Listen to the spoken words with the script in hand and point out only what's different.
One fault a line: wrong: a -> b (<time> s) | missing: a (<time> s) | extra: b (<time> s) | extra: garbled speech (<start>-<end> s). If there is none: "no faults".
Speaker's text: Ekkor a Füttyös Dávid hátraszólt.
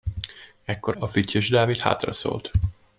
no faults